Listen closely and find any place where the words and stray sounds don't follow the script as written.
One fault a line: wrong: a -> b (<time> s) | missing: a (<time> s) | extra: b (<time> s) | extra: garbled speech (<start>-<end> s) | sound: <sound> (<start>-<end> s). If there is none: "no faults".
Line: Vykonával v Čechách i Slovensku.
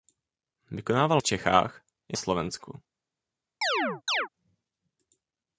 sound: chirp (3.6-4.3 s)